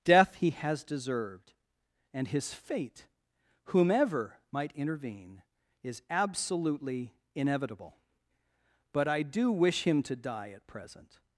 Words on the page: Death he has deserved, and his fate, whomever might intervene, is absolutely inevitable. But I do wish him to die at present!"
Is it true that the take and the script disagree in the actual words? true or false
false